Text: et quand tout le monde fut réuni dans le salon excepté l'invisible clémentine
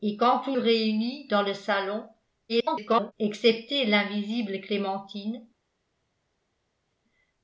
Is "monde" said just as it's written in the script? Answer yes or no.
no